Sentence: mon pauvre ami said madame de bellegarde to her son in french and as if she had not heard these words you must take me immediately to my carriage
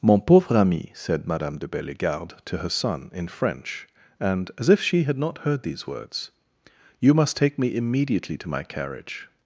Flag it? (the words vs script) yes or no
no